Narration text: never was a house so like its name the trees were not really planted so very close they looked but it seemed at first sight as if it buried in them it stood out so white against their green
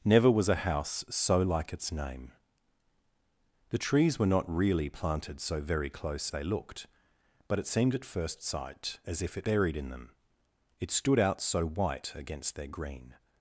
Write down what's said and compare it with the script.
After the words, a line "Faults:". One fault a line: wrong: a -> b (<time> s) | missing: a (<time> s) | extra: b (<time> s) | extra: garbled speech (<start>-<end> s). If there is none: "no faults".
never was a house so like its name the trees were not really planted so very close they looked but it seemed at first sight as if it buried in them it stood out so white against their green
Faults:
no faults